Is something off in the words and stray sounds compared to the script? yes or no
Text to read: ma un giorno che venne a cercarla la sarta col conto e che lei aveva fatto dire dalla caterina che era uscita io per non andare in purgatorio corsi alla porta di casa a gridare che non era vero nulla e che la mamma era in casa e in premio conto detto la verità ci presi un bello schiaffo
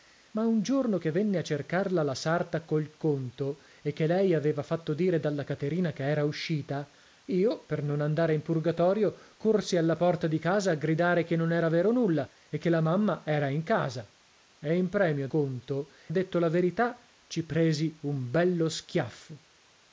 no